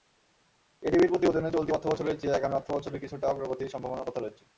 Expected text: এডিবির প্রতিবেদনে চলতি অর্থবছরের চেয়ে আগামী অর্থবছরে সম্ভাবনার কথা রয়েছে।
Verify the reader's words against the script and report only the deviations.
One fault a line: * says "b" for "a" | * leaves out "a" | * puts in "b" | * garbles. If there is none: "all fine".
* puts in "কিছুটা অগ্রগতির"